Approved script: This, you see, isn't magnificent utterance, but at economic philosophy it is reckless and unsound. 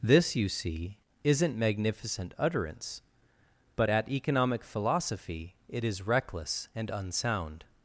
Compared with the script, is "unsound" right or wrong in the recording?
right